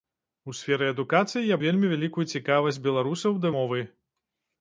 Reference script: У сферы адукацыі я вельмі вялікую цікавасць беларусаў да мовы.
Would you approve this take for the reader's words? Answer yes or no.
yes